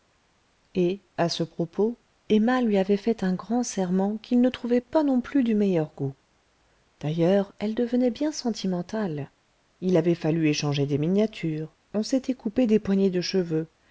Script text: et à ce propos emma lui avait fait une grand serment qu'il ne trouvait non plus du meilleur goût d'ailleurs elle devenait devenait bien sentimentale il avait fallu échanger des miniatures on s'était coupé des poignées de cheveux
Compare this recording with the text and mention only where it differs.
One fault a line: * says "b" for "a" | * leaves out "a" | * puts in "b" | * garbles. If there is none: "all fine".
* says "un" for "une"
* puts in "pas"
* leaves out "devenait"